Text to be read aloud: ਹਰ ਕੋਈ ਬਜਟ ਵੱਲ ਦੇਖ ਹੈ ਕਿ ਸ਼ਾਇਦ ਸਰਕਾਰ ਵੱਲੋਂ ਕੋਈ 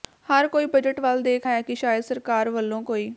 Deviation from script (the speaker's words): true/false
false